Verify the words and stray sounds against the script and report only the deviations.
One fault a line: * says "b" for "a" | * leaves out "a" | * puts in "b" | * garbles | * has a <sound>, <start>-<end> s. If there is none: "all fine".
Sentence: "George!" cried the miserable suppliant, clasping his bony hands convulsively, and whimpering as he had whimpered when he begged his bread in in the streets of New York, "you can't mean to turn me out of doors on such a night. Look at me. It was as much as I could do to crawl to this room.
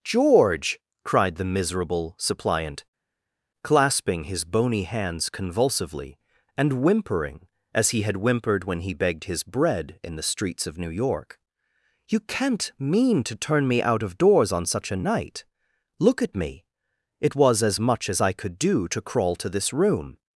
* leaves out "in"